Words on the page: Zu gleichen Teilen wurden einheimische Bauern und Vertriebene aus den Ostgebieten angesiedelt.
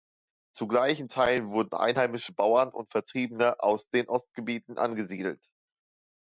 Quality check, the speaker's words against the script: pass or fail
pass